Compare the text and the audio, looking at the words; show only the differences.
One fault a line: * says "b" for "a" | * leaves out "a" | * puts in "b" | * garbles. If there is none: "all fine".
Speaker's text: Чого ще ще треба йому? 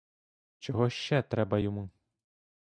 * leaves out "ще"